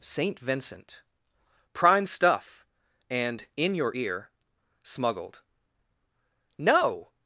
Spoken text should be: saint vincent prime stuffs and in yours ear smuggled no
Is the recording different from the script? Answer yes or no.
yes